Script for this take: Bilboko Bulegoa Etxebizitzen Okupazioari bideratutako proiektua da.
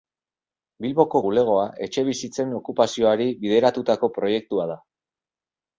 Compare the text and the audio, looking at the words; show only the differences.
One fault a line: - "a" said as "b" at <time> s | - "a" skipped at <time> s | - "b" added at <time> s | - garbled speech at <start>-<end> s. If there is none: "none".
none